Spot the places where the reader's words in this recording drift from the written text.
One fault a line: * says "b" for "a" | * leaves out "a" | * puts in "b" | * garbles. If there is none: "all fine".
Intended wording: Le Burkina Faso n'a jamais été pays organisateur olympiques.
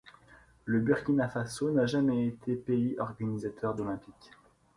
all fine